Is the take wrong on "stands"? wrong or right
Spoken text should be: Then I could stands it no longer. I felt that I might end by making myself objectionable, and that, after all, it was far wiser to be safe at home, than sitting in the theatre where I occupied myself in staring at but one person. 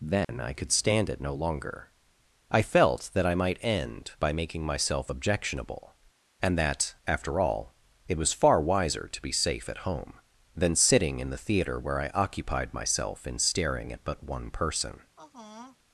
wrong